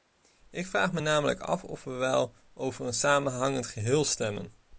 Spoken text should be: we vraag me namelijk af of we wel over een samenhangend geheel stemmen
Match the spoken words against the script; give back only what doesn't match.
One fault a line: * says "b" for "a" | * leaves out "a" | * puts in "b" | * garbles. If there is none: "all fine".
* says "ik" for "we"